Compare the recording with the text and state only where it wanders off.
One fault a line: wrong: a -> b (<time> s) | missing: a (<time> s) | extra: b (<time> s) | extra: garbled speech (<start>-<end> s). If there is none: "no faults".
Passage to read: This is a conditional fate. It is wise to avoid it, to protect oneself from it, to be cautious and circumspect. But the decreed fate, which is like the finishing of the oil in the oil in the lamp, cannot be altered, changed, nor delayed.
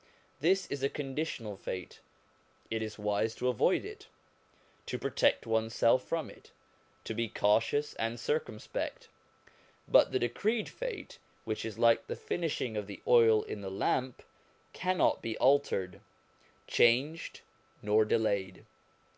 missing: oil in the (13.7 s)